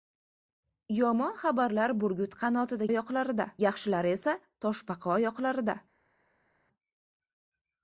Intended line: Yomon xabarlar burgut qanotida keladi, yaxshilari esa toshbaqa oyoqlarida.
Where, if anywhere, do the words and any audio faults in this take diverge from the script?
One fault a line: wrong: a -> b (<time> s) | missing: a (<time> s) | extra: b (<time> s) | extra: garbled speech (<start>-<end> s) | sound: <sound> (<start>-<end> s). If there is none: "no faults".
wrong: keladi -> oyoqlarida (2.9 s)